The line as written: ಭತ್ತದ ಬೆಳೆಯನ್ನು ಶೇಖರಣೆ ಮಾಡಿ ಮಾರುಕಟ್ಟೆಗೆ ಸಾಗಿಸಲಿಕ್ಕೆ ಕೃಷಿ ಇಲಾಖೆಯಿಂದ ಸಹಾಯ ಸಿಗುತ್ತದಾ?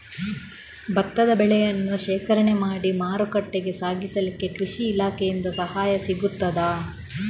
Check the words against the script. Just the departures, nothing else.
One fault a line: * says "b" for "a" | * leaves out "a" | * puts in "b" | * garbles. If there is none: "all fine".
all fine